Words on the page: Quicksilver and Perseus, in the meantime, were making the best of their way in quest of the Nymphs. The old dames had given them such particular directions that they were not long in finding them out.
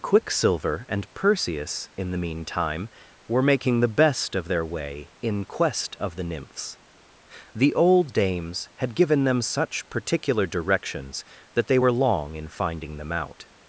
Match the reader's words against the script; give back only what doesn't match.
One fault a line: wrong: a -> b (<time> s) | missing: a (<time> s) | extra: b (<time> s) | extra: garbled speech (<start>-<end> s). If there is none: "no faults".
missing: not (11.9 s)